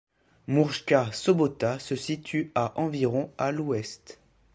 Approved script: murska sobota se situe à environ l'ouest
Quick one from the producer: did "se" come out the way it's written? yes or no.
yes